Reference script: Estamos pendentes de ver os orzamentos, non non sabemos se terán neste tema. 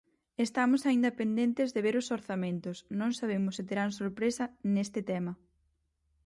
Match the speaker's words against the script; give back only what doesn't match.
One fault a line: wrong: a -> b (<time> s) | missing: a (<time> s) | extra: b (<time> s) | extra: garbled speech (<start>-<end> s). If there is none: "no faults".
extra: aínda (0.8 s)
missing: non (3.1 s)
extra: sorpresa (4.0 s)